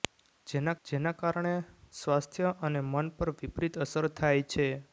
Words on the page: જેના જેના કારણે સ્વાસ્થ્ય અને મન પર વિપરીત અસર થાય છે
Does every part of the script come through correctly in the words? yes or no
yes